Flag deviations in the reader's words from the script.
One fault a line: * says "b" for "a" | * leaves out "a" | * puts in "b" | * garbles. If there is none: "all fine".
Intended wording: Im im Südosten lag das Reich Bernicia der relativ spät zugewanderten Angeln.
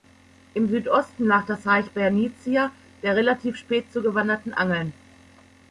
* leaves out "im"